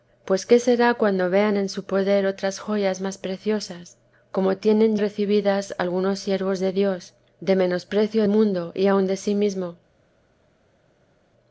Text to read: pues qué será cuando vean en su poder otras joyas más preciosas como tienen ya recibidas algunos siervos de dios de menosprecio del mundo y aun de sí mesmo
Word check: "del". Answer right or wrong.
wrong